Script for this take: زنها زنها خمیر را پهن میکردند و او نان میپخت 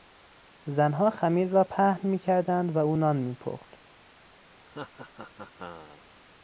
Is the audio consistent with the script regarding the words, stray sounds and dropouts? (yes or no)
no